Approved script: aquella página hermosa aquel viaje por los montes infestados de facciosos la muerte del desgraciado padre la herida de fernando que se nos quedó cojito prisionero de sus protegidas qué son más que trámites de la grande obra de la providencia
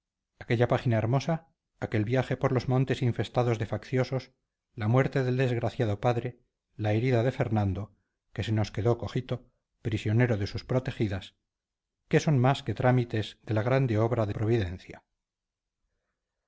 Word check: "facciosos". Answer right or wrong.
right